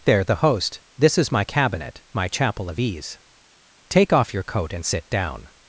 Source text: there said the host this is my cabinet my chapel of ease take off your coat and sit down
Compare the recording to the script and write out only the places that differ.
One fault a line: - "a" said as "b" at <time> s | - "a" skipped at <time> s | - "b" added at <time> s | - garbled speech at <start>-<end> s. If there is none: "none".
- "said" skipped at 0.2 s